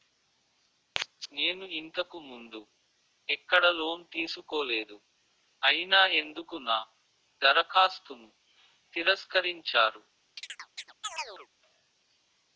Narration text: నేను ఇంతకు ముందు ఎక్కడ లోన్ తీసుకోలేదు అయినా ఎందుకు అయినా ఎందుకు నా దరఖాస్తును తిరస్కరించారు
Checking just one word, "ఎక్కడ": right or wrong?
right